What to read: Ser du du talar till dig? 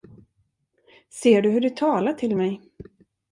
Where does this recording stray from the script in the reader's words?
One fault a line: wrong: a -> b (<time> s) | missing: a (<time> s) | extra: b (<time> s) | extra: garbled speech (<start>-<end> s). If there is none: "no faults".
extra: hur (1.5 s)
wrong: dig -> mig (2.3 s)